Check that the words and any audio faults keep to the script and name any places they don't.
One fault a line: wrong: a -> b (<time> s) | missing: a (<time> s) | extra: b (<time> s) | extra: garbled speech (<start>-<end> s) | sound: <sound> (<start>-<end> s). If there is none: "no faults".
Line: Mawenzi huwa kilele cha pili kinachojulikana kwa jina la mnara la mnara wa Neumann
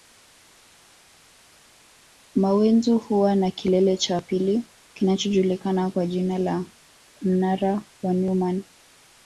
extra: na (3.3 s)
missing: la mnara (7.8 s)